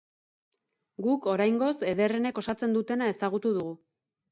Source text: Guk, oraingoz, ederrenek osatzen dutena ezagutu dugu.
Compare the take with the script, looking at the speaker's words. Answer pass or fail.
pass